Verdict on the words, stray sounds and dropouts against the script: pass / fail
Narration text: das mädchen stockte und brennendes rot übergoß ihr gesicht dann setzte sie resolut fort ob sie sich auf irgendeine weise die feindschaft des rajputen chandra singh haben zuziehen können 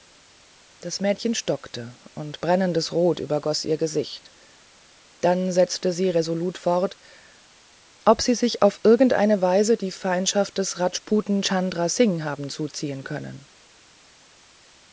pass